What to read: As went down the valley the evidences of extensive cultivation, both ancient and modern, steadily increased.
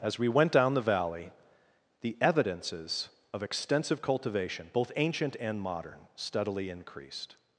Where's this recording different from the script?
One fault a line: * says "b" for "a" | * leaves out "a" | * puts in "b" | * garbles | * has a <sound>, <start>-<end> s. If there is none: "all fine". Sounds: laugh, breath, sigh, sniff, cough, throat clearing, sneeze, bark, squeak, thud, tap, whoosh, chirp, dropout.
* puts in "we"